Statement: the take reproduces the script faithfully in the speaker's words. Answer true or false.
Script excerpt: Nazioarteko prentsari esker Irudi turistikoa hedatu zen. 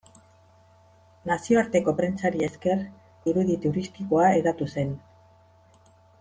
true